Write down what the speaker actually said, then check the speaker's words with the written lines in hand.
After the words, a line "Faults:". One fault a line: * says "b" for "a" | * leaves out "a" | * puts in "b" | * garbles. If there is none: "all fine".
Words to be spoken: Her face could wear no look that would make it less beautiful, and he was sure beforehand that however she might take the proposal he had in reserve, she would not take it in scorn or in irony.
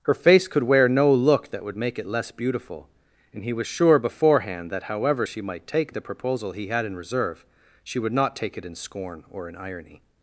Her face could wear no look that would make it less beautiful, and he was sure beforehand that however she might take the proposal he had in reserve, she would not take it in scorn or in irony.
Faults:
all fine